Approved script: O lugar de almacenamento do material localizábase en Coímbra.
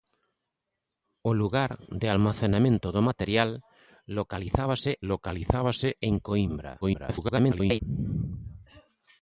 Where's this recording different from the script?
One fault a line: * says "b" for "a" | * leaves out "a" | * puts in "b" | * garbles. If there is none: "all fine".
* puts in "localizábase"
* garbles